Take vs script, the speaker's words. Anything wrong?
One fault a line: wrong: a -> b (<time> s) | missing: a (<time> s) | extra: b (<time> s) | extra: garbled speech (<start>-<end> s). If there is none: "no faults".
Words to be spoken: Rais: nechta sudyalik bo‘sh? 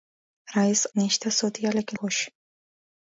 no faults